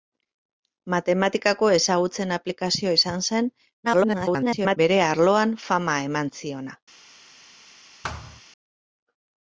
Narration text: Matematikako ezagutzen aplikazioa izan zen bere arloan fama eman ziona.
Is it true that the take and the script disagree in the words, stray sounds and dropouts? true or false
true